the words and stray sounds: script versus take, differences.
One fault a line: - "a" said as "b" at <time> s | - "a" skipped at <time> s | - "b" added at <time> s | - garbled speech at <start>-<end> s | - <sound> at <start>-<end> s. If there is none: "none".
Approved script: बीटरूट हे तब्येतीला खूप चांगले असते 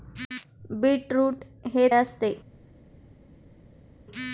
- "तब्येतीला खूप चांगले" skipped at 1.9 s